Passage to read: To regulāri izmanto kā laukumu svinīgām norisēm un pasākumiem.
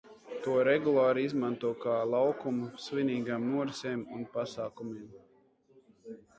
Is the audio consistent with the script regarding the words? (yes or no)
yes